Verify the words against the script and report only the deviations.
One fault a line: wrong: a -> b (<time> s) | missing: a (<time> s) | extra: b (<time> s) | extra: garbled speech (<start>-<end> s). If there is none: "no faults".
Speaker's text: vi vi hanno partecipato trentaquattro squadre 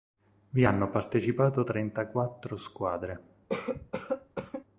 missing: vi (0.7 s)